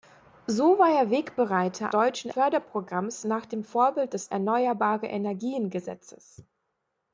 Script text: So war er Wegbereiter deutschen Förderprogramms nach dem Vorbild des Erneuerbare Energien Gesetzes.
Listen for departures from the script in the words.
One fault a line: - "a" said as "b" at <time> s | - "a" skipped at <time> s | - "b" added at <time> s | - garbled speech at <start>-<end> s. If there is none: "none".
none